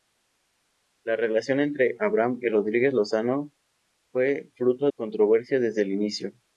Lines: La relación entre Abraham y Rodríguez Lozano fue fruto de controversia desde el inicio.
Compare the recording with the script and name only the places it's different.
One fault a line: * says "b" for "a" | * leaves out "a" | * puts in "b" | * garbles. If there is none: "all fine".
* leaves out "de"